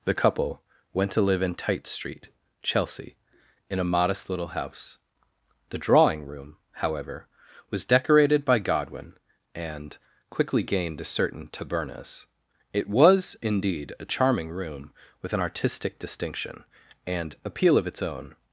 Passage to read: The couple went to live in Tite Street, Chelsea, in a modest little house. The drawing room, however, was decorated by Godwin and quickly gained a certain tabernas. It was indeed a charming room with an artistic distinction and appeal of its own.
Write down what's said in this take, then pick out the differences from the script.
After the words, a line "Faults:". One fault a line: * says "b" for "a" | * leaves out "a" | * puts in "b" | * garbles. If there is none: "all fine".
The couple went to live in Tite Street, Chelsea, in a modest little house. The drawing room, however, was decorated by Godwin and quickly gained a certain tabernas. It was indeed a charming room with an artistic distinction and appeal of its own.
Faults:
all fine